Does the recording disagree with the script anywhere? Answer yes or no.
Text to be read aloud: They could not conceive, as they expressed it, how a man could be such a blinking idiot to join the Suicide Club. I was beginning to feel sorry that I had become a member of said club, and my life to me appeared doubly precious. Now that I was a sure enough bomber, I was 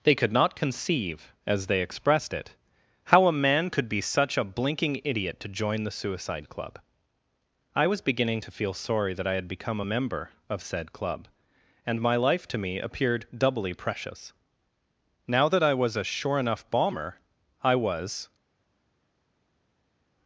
no